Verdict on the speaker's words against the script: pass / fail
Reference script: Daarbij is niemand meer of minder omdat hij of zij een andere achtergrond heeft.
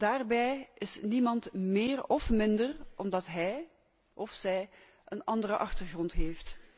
pass